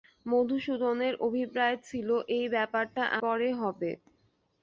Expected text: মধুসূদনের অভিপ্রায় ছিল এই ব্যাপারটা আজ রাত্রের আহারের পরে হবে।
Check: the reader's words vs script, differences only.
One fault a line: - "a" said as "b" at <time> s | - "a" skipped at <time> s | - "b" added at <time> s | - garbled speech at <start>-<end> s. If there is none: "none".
- "আজ রাত্রের আহারের" skipped at 3.0 s